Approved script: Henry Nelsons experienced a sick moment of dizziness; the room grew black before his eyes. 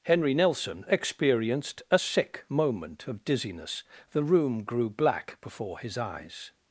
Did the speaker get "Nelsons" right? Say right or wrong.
wrong